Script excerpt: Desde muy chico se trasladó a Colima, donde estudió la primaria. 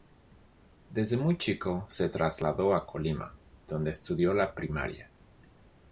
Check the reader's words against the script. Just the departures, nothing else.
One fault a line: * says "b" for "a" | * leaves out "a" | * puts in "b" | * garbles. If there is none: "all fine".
all fine